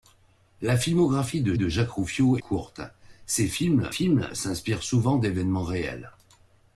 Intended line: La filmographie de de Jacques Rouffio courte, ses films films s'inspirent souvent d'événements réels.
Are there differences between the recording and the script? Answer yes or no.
no